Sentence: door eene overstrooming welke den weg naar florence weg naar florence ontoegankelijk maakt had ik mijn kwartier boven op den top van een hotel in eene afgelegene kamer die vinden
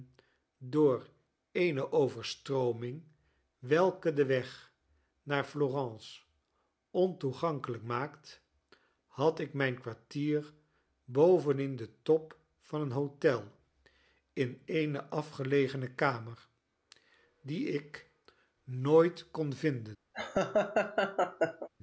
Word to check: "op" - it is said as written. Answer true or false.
false